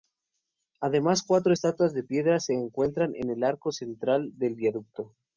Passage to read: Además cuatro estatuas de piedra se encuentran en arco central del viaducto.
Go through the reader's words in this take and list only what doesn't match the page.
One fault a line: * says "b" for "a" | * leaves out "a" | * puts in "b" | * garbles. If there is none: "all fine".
* puts in "el"